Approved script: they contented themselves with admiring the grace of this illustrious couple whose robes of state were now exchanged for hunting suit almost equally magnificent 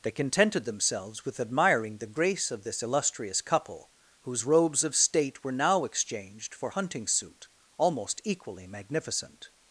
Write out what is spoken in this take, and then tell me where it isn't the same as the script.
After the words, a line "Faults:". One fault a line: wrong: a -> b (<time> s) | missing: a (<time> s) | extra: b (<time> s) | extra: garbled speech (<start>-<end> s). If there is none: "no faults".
they contented themselves with admiring the grace of this illustrious couple whose robes of state were now exchanged for hunting suit almost equally magnificent
Faults:
no faults